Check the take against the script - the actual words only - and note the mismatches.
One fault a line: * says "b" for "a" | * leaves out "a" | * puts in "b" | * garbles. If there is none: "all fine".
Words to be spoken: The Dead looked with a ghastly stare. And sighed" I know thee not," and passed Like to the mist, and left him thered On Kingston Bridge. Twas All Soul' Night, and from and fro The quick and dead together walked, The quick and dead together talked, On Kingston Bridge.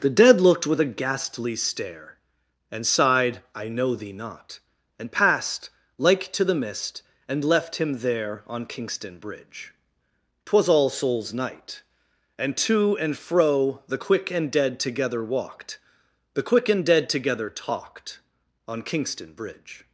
* says "there" for "thered"
* says "Souls" for "Soul"
* says "to" for "from"